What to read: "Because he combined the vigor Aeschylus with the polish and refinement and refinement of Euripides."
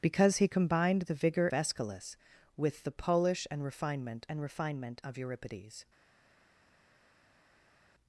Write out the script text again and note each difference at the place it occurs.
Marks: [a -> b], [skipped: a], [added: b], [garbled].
"Because he combined the vigor Aeschylus with the polish and refinement and refinement of Euripides."